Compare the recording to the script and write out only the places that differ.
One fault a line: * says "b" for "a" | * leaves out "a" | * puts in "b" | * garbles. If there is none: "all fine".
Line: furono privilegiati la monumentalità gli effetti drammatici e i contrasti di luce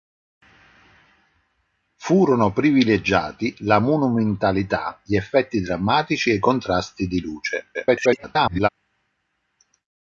* garbles